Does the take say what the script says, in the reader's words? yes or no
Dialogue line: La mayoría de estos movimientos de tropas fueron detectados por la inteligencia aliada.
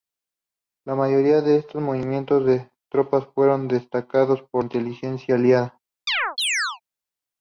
no